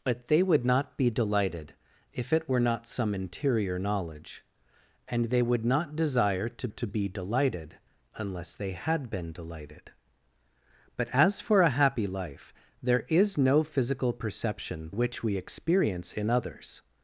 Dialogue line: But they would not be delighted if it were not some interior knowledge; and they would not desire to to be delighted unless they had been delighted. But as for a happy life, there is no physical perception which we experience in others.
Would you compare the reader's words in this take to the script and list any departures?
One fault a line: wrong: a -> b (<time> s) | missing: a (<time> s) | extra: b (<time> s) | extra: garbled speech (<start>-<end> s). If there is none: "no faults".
no faults